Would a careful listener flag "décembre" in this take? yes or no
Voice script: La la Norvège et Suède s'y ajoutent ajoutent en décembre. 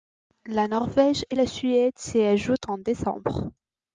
no